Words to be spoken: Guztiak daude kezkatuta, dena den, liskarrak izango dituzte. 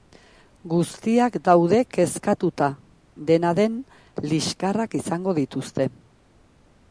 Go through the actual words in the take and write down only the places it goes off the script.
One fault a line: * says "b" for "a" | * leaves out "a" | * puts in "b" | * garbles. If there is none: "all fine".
all fine